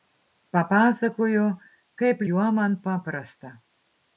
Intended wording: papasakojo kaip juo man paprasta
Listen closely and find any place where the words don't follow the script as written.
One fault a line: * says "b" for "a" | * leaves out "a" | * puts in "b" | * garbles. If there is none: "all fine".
all fine